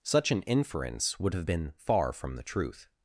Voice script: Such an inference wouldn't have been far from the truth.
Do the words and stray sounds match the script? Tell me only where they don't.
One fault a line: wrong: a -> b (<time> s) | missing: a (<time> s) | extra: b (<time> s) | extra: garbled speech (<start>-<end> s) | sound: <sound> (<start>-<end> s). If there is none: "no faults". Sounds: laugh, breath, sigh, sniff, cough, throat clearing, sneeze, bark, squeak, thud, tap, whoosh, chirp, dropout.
wrong: wouldn't -> would (1.2 s)